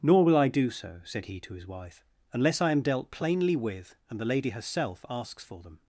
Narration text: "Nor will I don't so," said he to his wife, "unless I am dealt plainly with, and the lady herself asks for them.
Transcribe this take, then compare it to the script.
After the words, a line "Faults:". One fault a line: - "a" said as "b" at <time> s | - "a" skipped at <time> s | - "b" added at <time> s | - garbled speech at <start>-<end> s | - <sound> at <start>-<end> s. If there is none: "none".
"Nor will I do so," said he to his wife, "unless I am dealt plainly with, and the lady herself asks for them.
Faults:
- "don't" said as "do" at 0.5 s